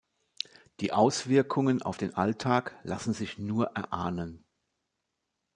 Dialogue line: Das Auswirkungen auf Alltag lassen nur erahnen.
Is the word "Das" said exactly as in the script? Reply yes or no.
no